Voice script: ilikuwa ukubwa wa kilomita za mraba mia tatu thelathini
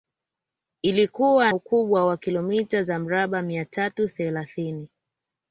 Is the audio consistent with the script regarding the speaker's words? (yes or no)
yes